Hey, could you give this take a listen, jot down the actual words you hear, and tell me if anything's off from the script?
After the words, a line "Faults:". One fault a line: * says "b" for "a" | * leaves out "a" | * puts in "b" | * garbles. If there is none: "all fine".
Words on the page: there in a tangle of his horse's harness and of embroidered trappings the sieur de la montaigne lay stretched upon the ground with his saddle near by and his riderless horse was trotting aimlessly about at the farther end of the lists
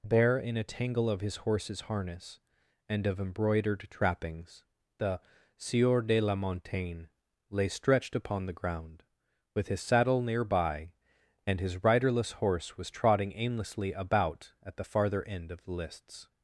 bare in a tangle of his horse's harness and of embroidered trappings the sieur de la montaigne lay stretched upon the ground with his saddle near by and his riderless horse was trotting aimlessly about at the farther end of the lists
Faults:
* says "bare" for "there"